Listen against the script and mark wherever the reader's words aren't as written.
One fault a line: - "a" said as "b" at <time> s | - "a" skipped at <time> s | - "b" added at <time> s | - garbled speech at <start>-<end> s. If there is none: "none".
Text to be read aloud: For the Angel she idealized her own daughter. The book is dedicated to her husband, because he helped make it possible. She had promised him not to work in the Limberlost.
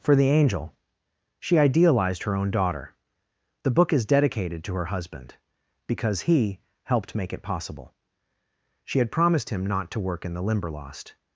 none